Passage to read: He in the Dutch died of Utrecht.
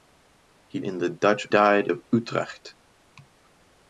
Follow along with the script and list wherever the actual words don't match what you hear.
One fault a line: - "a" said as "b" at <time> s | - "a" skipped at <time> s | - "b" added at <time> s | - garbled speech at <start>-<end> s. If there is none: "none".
none